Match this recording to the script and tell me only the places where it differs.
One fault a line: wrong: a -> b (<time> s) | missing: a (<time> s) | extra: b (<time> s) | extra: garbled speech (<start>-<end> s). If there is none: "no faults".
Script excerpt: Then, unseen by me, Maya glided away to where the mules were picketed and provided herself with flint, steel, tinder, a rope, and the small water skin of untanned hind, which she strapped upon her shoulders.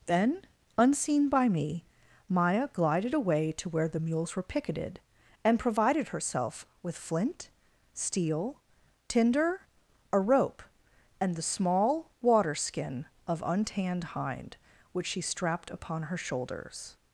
no faults